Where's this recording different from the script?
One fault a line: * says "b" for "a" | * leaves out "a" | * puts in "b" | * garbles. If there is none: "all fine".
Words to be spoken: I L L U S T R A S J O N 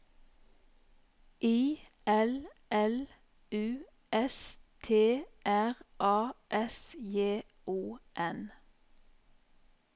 all fine